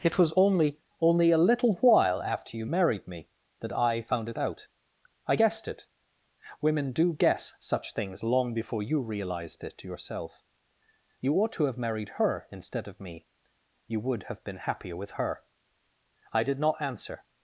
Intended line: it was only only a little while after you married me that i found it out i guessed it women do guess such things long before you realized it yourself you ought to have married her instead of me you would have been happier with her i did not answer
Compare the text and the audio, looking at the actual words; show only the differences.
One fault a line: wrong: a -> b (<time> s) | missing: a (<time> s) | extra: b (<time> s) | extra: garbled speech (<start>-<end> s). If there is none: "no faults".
no faults